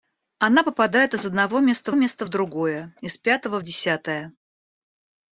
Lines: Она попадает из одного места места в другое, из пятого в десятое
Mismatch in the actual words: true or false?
false